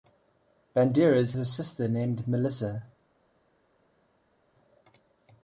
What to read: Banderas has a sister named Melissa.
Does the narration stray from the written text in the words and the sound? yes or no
yes